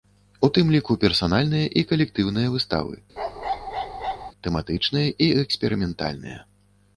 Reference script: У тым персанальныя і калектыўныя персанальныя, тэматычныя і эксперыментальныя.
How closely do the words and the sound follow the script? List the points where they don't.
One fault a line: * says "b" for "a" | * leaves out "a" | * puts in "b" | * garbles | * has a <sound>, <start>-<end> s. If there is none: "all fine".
* puts in "ліку"
* says "выставы" for "персанальныя"
* has a bark, 3.2-4.3 s